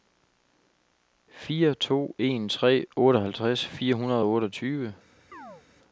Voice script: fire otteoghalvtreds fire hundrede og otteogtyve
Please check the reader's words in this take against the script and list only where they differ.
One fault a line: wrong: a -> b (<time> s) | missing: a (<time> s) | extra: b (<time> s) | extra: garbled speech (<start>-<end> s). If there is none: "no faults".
extra: to en tre (1.7 s)